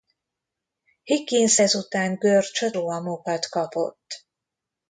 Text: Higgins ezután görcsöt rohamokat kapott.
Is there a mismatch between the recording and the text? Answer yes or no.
no